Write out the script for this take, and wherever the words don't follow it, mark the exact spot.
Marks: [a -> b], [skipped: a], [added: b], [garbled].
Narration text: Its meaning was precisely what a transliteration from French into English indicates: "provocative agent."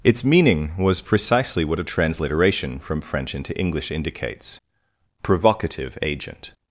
Its meaning was precisely what a transliteration from French into English indicates: "provocative agent."